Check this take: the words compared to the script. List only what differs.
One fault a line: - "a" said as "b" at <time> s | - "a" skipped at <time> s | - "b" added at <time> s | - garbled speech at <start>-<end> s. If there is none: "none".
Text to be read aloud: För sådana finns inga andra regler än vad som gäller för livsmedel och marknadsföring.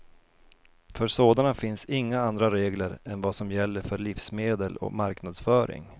none